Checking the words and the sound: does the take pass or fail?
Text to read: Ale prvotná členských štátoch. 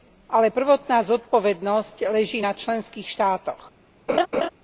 fail